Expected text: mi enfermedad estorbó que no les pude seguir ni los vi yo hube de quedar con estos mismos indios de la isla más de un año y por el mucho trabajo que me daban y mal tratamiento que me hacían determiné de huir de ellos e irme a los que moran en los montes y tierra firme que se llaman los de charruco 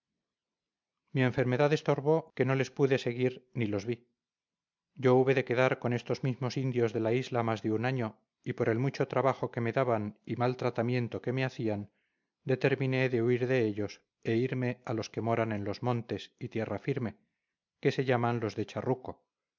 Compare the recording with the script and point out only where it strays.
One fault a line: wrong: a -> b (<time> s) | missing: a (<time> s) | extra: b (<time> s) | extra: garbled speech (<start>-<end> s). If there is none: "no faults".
no faults